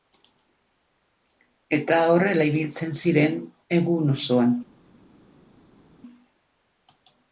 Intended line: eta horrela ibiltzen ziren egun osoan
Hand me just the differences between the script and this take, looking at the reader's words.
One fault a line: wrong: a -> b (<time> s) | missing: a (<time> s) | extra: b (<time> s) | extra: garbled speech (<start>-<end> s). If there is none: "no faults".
no faults